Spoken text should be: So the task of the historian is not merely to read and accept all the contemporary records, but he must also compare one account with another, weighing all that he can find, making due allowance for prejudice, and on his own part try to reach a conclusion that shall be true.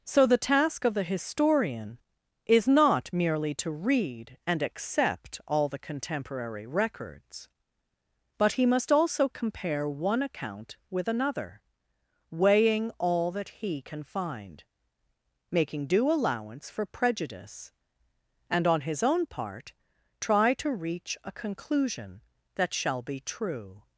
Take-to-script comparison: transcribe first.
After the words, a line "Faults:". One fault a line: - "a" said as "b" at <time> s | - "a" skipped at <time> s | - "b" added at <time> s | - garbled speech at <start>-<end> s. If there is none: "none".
So the task of the historian is not merely to read and accept all the contemporary records, but he must also compare one account with another, weighing all that he can find, making due allowance for prejudice, and on his own part try to reach a conclusion that shall be true.
Faults:
none